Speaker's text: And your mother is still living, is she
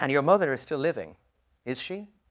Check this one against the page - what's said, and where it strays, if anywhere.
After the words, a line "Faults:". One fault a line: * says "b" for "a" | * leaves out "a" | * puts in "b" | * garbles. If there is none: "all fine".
And your mother is still living, is she
Faults:
all fine